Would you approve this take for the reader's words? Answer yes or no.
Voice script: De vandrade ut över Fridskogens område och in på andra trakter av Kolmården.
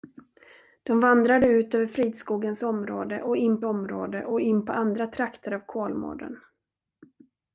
no